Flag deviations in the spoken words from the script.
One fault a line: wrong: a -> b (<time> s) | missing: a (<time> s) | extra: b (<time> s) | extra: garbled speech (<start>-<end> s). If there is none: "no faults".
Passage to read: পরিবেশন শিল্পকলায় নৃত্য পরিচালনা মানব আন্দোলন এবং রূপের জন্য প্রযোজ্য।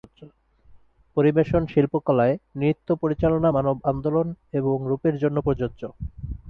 no faults